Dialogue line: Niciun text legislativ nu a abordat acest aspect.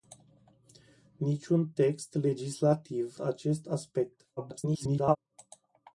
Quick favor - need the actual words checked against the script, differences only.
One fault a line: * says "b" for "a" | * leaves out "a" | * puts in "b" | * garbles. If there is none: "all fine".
* leaves out "nu a abordat"
* garbles